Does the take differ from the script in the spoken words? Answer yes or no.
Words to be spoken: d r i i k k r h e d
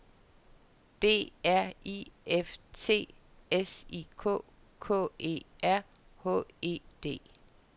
yes